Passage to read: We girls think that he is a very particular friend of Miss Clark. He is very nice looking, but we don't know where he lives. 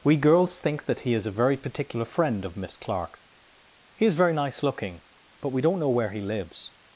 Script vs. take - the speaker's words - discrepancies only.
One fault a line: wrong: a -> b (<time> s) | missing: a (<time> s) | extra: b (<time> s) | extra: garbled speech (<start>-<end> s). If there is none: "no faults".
no faults